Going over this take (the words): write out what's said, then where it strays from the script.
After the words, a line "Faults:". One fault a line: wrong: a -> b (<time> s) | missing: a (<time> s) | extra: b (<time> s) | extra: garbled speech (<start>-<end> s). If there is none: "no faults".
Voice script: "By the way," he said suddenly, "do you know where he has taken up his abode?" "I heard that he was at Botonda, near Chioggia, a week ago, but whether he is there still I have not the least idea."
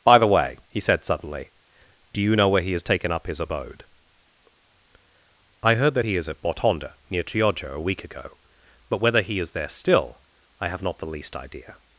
"By the way," he said suddenly, "do you know where he has taken up his abode?" "I heard that he is at Botonda, near Chioggia, a week ago, but whether he is there still I have not the least idea."
Faults:
wrong: was -> is (6.2 s)